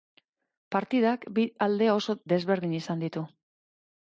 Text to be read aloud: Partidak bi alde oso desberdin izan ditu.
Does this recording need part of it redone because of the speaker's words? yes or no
no